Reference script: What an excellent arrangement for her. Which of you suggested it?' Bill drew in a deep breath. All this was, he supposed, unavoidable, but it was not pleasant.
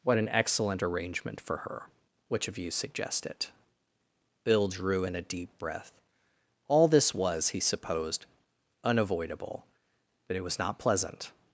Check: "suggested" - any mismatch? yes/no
yes